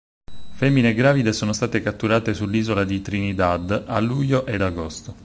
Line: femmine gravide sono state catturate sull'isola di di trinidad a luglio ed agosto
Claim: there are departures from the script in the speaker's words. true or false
true